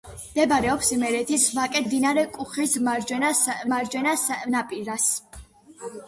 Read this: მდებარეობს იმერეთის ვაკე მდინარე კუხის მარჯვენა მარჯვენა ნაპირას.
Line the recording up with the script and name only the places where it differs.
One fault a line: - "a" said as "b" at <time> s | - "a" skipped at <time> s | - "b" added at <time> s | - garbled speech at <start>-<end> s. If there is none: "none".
none